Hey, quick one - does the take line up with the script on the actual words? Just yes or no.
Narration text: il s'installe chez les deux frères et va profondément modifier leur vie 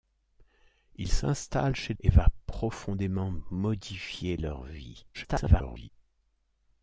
no